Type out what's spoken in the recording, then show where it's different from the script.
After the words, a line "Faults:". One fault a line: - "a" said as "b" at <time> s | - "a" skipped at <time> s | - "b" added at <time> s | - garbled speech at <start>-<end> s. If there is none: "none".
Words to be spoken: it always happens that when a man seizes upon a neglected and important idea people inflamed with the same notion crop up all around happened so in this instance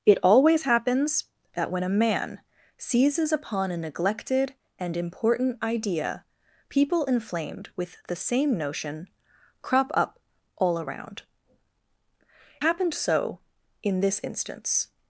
it always happens that when a man seizes upon a neglected and important idea people inflamed with the same notion crop up all around happened so in this instance
Faults:
none